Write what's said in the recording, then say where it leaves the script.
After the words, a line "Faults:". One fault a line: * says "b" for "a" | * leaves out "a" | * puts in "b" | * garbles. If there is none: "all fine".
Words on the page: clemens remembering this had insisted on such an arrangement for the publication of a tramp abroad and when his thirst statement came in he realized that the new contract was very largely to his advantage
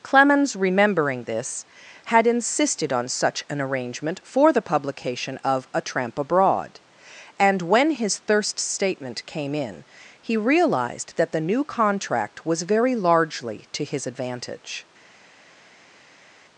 clemens remembering this had insisted on such an arrangement for the publication of a tramp abroad and when his thirst statement came in he realized that the new contract was very largely to his advantage
Faults:
all fine